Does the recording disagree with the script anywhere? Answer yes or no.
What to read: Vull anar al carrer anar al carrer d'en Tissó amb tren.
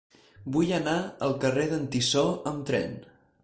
yes